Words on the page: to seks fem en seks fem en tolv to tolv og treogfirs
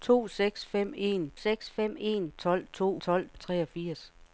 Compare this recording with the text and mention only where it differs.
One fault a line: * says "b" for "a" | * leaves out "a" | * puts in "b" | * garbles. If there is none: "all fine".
all fine